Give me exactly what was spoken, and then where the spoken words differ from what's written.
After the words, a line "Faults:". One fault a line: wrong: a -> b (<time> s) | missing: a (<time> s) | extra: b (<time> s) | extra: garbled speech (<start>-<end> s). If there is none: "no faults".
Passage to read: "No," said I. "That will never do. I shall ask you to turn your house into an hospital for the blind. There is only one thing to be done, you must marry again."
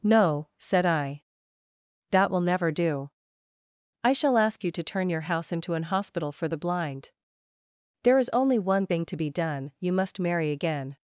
"No," said I. "That will never do. I shall ask you to turn your house into an hospital for the blind. There is only one thing to be done, you must marry again."
Faults:
no faults